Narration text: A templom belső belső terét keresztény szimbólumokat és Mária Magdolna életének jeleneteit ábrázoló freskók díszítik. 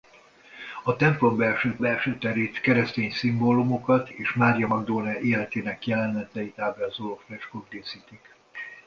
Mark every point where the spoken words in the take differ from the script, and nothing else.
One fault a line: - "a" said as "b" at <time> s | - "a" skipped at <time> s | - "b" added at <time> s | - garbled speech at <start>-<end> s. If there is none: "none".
none